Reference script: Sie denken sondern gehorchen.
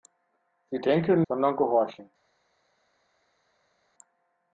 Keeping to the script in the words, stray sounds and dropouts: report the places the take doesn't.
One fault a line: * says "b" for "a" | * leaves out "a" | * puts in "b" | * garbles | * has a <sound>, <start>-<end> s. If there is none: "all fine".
all fine